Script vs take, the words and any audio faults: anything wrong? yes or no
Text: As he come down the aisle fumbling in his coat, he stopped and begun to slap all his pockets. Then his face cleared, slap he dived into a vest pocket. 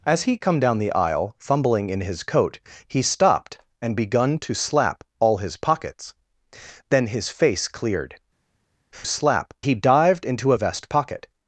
no